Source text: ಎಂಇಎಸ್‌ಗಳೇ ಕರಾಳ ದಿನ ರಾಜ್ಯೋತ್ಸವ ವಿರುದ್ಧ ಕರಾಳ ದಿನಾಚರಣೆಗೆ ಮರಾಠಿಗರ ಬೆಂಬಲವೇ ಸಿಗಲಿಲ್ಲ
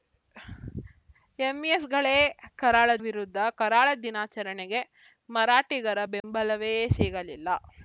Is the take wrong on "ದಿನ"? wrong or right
wrong